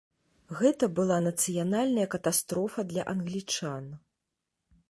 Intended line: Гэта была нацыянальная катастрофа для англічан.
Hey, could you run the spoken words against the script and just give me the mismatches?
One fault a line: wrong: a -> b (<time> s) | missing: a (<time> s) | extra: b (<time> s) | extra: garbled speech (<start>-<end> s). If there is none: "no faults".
no faults